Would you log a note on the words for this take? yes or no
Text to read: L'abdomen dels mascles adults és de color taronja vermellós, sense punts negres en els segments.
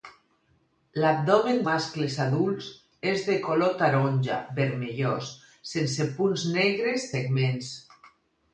yes